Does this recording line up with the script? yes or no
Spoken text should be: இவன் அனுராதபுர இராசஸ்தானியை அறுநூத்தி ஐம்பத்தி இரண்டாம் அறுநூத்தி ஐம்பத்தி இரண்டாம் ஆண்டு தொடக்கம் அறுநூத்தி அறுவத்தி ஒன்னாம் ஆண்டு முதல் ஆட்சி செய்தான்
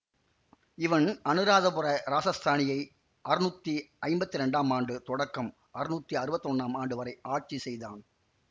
no